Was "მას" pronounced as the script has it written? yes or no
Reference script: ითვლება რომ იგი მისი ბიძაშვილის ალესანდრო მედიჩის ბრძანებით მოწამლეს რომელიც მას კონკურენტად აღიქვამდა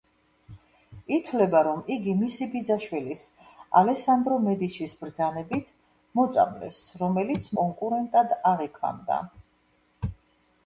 no